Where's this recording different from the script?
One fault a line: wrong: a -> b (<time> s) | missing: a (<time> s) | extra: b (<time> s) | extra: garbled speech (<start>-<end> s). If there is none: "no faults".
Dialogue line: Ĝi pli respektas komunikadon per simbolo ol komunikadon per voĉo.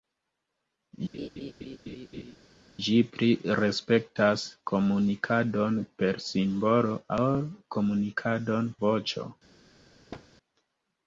missing: per (8.7 s)